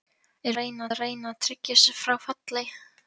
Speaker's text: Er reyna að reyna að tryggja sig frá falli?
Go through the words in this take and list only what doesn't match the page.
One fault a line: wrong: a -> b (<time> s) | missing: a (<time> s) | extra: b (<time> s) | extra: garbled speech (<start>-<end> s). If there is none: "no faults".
no faults